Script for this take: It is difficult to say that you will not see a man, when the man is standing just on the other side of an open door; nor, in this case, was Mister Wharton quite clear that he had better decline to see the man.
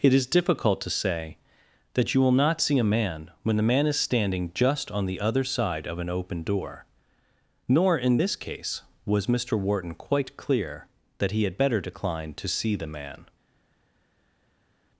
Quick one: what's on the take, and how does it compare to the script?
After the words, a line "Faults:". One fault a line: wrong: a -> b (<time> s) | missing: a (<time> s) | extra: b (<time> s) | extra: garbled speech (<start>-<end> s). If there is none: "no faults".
It is difficult to say that you will not see a man, when the man is standing just on the other side of an open door; nor, in this case, was Mister Wharton quite clear that he had better decline to see the man.
Faults:
no faults